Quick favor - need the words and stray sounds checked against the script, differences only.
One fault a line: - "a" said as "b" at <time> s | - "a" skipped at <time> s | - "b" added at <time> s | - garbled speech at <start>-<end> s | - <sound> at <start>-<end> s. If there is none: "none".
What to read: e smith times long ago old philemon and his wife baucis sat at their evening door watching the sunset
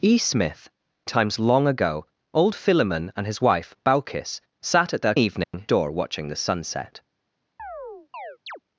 - dropout at 5.4-5.5 s
- chirp at 7.6-8.6 s